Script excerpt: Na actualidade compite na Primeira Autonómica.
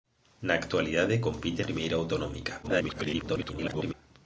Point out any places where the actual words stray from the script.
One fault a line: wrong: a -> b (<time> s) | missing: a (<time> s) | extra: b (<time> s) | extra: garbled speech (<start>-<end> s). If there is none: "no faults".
missing: na (1.6 s)
extra: garbled speech (2.6-3.9 s)